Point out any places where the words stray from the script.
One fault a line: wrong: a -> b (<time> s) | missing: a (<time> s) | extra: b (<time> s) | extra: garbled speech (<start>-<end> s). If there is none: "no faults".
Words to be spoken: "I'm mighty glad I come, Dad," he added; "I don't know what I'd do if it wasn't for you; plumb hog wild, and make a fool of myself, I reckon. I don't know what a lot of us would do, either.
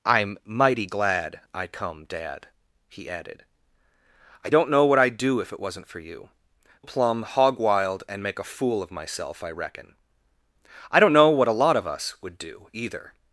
no faults